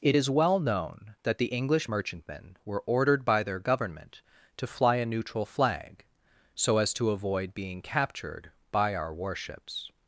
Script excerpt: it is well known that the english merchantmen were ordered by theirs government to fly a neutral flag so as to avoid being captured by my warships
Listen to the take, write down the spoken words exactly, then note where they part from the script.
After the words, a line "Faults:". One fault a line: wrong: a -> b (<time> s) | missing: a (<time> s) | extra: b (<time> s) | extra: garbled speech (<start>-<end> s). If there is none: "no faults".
it is well known that the english merchantmen were ordered by their government to fly a neutral flag so as to avoid being captured by our warships
Faults:
wrong: theirs -> their (3.4 s)
wrong: my -> our (9.0 s)